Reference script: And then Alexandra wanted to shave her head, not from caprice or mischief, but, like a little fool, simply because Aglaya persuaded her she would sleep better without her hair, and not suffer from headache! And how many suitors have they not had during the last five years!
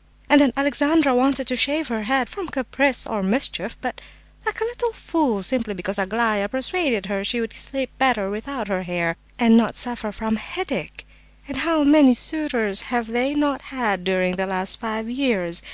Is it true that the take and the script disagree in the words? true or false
true